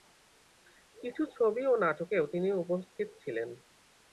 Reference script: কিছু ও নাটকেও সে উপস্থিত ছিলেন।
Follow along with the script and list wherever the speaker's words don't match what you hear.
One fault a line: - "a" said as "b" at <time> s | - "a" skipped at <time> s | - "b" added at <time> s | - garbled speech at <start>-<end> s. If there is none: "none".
- "ছবি" added at 1.4 s
- "সে" said as "তিনি" at 2.3 s